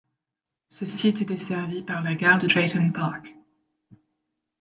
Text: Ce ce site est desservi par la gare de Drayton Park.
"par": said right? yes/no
yes